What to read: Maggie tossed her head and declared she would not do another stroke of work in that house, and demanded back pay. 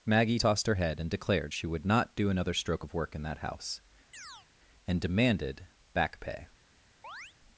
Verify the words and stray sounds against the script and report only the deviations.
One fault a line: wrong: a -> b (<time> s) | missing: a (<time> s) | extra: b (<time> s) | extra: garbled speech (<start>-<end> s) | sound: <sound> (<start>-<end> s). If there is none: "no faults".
sound: chirp (4.1-4.5 s)
sound: chirp (7.0-7.3 s)